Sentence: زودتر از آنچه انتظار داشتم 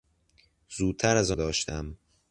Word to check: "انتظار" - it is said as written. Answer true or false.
false